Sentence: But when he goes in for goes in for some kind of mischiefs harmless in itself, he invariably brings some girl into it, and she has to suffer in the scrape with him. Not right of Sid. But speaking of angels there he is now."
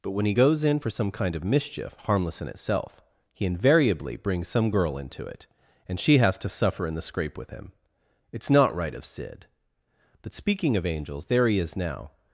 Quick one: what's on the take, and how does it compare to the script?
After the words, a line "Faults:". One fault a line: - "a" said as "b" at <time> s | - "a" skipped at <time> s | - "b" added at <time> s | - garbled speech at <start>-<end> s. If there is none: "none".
But when he goes in for some kind of mischief harmless in itself, he invariably brings some girl into it, and she has to suffer in the scrape with him. It's not right of Sid. But speaking of angels there he is now."
Faults:
- "goes in for" skipped at 0.9 s
- "mischiefs" said as "mischief" at 1.4 s
- "It's" added at 8.3 s